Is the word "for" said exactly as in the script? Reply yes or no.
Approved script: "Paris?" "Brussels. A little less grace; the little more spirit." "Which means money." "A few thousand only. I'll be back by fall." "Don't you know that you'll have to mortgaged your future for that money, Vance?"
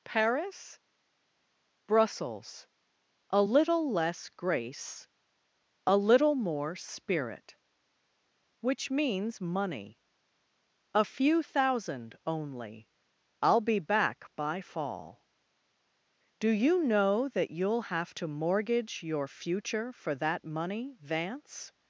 yes